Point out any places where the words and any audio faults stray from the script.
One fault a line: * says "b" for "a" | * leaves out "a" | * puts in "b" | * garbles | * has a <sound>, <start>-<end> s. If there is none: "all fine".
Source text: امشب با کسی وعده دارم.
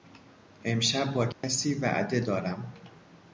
* has a dropout, 1.3-1.4 s